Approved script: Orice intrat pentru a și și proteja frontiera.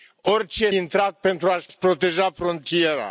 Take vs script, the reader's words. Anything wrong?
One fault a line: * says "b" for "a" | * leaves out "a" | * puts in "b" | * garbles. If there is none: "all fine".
all fine